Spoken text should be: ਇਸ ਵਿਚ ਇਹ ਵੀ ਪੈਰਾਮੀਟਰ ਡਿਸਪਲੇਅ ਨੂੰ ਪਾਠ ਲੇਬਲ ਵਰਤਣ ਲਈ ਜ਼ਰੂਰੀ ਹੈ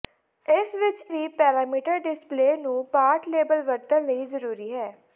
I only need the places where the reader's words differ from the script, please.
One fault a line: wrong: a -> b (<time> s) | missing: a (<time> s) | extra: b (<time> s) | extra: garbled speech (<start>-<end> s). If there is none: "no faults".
missing: ਇਹ (1.0 s)